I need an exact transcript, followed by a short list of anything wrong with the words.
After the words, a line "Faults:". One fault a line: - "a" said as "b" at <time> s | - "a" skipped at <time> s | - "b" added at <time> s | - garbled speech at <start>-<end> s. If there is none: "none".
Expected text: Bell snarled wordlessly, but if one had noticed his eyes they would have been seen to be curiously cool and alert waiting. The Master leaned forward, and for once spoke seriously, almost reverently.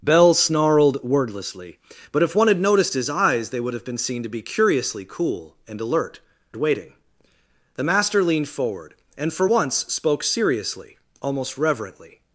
Bell snarled wordlessly, but if one had noticed his eyes they would have been seen to be curiously cool and alert waiting. The Master leaned forward, and for once spoke seriously, almost reverently.
Faults:
none